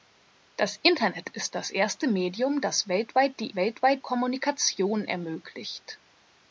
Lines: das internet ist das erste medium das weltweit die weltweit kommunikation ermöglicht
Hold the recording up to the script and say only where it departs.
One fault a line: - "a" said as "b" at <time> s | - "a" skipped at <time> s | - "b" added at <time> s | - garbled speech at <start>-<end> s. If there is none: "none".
none